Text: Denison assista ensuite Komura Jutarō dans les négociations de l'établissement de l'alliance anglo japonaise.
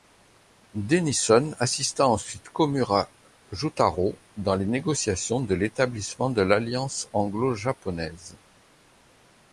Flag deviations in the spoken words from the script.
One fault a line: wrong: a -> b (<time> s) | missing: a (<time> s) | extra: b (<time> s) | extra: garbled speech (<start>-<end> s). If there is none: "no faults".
no faults